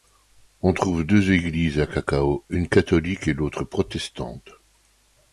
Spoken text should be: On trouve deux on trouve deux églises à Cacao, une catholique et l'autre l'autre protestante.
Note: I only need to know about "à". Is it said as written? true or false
true